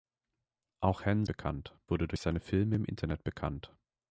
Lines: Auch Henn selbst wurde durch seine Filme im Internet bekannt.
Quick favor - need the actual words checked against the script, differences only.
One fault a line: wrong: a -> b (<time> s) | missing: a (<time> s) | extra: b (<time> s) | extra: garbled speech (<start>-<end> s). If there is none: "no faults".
wrong: selbst -> bekannt (1.2 s)